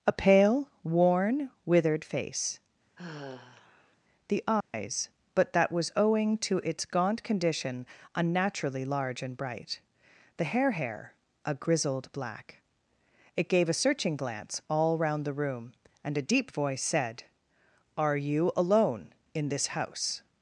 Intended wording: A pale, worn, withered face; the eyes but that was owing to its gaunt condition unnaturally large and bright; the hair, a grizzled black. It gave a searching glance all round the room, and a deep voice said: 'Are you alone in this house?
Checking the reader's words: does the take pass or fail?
fail